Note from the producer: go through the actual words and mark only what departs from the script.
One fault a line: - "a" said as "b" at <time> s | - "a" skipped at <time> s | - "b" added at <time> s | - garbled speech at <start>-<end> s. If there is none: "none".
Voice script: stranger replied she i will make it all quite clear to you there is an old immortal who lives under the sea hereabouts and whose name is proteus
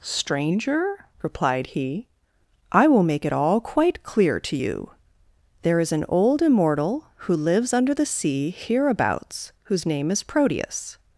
- "she" said as "he" at 1.7 s
- "and" skipped at 9.5 s